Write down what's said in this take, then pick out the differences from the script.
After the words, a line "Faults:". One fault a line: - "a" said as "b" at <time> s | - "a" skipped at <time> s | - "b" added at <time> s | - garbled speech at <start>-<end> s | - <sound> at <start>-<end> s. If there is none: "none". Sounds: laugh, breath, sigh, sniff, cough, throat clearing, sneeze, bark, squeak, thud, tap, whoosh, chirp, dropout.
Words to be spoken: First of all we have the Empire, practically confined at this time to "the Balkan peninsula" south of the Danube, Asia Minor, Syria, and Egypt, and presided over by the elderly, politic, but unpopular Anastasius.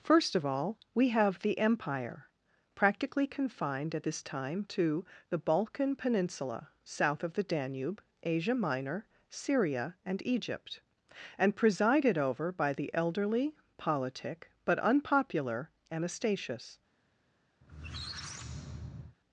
First of all we have the Empire, practically confined at this time to "the Balkan peninsula" south of the Danube, Asia Minor, Syria, and Egypt, and presided over by the elderly, politic, but unpopular Anastasius.
Faults:
- squeak at 17.6-19.2 s